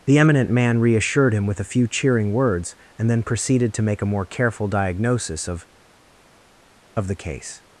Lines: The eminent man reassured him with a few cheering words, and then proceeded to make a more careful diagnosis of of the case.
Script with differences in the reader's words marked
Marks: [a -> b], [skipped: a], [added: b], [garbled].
The eminent man reassured him with a few cheering words, and then proceeded to make a more careful diagnosis of of the case.